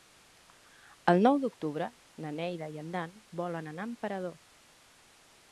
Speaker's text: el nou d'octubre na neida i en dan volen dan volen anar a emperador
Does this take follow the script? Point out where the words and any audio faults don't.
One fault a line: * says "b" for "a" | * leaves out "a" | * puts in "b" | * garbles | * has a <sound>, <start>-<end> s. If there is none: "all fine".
* leaves out "dan volen"